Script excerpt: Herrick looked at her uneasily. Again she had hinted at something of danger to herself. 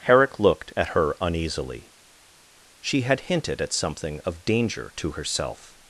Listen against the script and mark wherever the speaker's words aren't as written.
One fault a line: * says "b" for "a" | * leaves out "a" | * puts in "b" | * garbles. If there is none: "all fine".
* leaves out "Again"